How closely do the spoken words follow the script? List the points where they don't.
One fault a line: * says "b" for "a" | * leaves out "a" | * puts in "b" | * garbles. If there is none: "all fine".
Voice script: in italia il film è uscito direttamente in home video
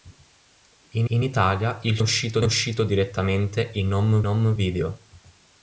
* puts in "in"
* says "uscito" for "film"
* puts in "home"